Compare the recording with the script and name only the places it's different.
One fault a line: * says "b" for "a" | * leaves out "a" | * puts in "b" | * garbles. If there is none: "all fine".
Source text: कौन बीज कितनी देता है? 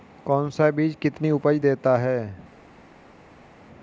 * puts in "सा"
* puts in "उपज"